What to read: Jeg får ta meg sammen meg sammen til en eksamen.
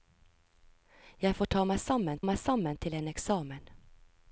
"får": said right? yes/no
yes